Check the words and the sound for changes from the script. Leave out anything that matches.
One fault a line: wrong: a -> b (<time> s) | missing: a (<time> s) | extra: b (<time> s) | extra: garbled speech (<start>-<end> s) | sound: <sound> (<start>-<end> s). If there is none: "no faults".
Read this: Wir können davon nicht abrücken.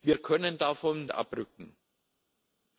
missing: nicht (1.1 s)